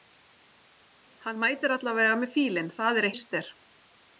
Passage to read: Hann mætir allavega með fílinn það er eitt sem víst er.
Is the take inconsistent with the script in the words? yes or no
yes